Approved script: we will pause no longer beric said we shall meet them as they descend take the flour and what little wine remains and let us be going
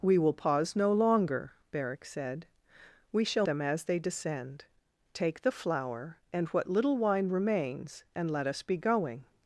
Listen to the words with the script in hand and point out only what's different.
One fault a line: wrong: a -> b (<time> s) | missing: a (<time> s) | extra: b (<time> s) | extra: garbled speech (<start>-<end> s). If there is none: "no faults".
missing: meet (3.5 s)